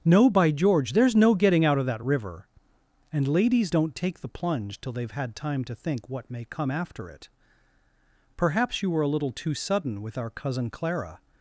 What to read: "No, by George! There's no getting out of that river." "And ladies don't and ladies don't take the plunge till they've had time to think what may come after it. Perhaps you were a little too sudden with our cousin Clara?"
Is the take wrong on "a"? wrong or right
right